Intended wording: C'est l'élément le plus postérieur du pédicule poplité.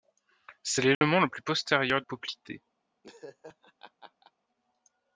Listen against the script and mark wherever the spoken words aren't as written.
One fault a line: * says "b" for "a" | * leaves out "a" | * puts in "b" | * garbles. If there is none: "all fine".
* leaves out "du pédicule"